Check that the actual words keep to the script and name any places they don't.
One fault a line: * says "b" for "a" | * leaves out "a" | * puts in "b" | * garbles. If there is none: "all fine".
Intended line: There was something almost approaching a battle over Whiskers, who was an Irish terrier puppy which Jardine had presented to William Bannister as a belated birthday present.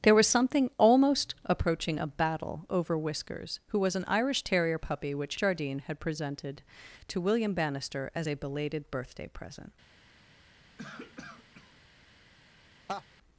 all fine